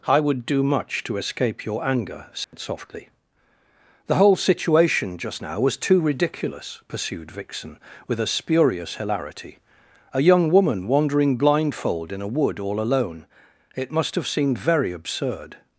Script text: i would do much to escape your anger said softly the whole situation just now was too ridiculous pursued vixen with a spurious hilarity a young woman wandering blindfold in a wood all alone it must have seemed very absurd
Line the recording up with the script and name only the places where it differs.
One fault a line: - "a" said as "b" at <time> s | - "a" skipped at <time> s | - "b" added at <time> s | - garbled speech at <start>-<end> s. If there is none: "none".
none